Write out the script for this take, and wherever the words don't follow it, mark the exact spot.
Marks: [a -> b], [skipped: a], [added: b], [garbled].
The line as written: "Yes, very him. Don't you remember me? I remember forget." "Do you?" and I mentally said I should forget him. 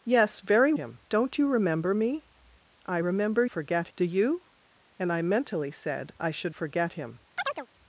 "Yes, very him. Don't you remember me? I remember forget." "Do you?" and I mentally said I should forget him.